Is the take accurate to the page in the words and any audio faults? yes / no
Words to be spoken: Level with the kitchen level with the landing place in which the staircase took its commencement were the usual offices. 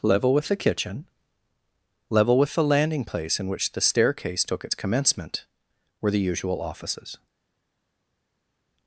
yes